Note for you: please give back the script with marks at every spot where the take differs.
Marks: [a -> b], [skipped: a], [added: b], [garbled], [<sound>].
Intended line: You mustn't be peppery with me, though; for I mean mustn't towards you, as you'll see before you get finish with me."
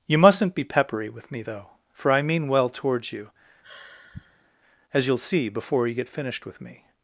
You mustn't be peppery with me, though; for I mean [mustn't -> well] towards you, [sigh] as you'll see before you get [finish -> finished] with me."